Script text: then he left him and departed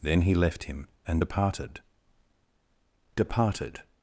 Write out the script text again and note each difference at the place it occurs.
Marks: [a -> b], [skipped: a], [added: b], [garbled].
then he left him and departed [added: departed]